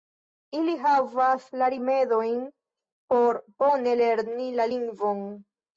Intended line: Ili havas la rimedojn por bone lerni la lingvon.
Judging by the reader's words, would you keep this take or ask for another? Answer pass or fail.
pass